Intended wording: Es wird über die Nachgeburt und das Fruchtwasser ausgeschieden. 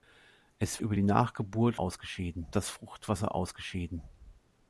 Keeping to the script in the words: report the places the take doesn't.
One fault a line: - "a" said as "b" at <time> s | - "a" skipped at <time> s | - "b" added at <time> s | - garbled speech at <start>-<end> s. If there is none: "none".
- "wird" skipped at 0.8 s
- "und" said as "ausgeschieden" at 1.8 s